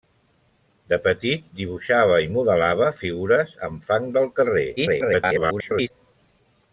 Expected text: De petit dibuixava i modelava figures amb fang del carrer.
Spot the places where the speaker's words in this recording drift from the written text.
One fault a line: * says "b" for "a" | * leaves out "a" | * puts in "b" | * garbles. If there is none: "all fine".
* garbles